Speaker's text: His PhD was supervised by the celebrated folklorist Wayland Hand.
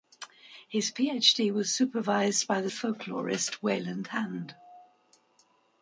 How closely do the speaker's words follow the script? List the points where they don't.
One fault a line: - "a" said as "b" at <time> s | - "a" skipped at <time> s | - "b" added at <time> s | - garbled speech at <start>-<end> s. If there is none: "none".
- "celebrated" skipped at 2.7 s